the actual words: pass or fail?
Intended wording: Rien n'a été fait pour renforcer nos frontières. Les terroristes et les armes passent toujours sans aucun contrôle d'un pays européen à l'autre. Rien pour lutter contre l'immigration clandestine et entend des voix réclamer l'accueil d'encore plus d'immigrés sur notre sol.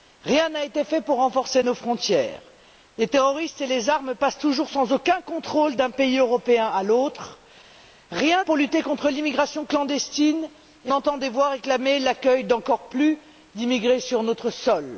pass